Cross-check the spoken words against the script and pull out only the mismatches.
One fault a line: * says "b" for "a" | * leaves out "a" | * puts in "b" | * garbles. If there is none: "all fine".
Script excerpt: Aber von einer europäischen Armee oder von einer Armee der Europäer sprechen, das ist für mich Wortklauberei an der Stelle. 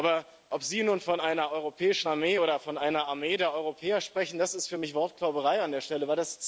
* puts in "ob Sie nun"